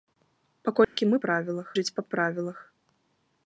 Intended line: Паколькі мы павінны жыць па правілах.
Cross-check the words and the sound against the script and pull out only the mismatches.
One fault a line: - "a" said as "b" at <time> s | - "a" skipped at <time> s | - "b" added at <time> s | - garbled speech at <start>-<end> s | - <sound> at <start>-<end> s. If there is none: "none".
- dropout at 0.8-1.0 s
- "павінны" said as "правілах" at 1.3 s